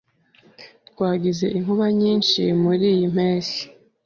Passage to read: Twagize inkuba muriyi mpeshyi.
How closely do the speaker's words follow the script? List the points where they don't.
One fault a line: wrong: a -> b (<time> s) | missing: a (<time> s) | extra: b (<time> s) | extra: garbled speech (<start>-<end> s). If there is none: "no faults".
extra: nyinshi (2.0 s)